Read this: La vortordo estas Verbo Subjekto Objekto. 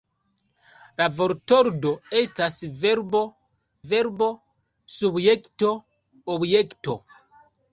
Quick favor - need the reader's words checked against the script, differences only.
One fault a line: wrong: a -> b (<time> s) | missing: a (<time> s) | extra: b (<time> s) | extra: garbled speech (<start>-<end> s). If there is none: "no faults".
extra: Verbo (3.9 s)